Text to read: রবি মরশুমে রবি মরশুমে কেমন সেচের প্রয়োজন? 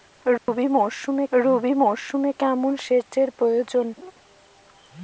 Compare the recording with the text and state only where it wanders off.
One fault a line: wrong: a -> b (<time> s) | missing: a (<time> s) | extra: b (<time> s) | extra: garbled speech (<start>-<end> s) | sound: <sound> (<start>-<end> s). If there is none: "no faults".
sound: dropout (0.4-0.5 s)
sound: laugh (4.0-4.1 s)